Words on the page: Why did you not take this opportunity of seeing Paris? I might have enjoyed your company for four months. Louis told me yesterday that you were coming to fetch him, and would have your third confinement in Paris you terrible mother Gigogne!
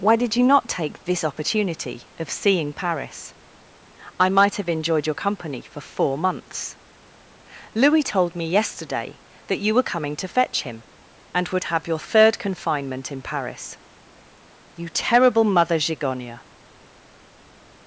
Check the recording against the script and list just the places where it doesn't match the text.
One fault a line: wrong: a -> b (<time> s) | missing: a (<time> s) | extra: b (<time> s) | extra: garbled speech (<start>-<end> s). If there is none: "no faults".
no faults